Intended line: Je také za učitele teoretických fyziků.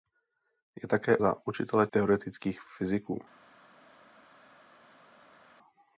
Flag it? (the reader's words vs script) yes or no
no